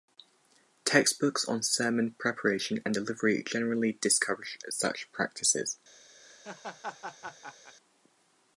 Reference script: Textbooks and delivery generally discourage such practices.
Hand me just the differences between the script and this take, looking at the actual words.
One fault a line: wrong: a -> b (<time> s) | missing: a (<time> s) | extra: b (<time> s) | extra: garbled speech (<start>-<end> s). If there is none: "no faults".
extra: on sermon preparation (1.5 s)